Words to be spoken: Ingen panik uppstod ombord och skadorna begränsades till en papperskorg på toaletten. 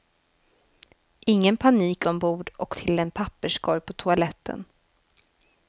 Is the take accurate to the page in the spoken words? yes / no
no